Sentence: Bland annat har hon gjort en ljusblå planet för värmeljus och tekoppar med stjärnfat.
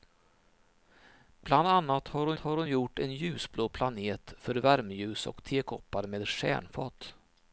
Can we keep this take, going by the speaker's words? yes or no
no